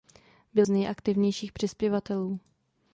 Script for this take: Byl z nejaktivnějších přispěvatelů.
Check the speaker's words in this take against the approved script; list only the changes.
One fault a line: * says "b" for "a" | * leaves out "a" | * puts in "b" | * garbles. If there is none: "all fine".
all fine